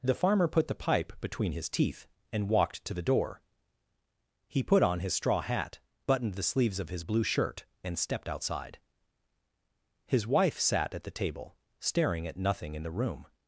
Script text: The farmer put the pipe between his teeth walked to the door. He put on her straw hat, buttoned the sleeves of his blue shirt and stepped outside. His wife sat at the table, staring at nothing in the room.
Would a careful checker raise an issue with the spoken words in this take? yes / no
yes